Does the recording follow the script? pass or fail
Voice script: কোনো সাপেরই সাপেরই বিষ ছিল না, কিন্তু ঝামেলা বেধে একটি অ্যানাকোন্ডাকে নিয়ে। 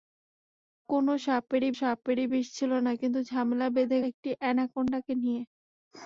pass